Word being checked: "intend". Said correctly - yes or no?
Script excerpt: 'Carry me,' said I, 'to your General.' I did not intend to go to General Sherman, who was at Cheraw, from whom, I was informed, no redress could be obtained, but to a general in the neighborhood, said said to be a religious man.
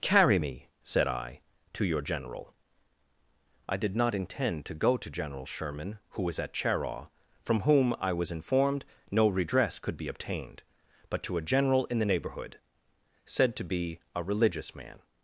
yes